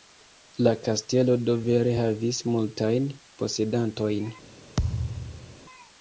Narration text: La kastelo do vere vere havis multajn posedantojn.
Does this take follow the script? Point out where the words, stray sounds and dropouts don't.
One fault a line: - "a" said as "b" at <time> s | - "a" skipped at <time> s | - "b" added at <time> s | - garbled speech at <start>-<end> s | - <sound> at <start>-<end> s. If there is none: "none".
- "vere" skipped at 2.0 s
- thud at 4.8-5.6 s